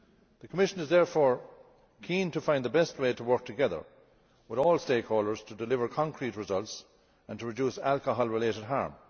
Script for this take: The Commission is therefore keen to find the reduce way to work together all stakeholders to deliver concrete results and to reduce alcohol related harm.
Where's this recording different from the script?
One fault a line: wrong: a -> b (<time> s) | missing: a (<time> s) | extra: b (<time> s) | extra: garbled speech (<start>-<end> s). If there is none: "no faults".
wrong: reduce -> best (2.7 s)
extra: with (4.5 s)